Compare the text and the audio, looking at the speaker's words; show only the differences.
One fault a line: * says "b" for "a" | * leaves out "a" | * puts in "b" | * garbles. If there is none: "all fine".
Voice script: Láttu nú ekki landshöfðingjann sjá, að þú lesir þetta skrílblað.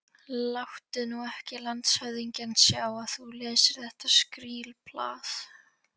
all fine